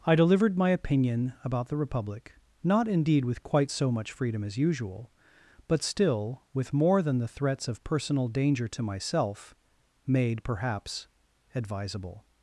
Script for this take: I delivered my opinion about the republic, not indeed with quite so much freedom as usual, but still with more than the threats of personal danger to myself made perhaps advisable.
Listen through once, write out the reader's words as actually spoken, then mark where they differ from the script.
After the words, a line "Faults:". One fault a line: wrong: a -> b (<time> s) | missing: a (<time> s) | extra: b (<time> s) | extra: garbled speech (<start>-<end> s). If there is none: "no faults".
I delivered my opinion about the republic, not indeed with quite so much freedom as usual, but still with more than the threats of personal danger to myself made perhaps advisable.
Faults:
no faults